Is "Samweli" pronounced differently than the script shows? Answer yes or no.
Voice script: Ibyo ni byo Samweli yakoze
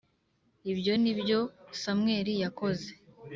no